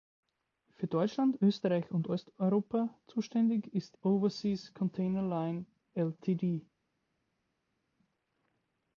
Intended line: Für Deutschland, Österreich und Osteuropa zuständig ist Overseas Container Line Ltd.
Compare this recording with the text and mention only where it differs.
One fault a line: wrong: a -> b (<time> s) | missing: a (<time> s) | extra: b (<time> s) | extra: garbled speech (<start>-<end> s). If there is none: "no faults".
no faults